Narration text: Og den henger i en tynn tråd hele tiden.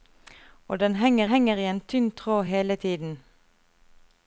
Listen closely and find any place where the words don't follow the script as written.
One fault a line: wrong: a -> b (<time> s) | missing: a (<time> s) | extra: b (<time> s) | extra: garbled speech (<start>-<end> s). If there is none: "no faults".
extra: henger (1.2 s)